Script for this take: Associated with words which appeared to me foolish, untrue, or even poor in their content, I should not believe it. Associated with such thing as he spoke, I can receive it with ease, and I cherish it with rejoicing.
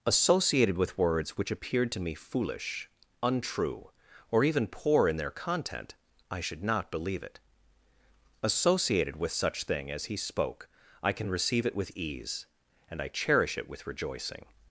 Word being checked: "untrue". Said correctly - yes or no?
yes